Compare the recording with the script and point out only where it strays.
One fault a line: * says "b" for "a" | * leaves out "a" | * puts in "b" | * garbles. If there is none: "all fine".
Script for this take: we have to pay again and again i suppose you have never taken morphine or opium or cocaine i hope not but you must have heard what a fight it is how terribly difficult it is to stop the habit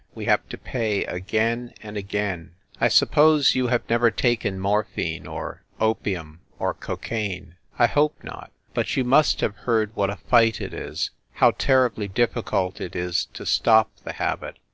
all fine